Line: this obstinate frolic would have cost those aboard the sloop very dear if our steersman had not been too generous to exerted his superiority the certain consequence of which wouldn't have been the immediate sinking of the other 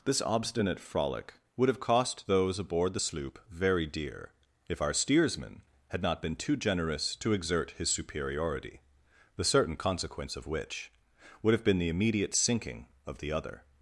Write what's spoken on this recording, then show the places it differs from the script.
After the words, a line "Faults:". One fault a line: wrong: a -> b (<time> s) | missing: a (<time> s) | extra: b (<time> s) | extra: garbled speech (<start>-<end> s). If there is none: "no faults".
this obstinate frolic would have cost those aboard the sloop very dear if our steersman had not been too generous to exert his superiority the certain consequence of which would have been the immediate sinking of the other
Faults:
wrong: exerted -> exert (7.3 s)
wrong: wouldn't -> would (11.4 s)